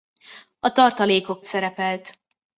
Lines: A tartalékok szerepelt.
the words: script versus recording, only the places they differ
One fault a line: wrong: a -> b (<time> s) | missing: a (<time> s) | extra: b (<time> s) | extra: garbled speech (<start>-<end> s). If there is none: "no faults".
no faults